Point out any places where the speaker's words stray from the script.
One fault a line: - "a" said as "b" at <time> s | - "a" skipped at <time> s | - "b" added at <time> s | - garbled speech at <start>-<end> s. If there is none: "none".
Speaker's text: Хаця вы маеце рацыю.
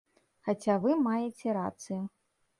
none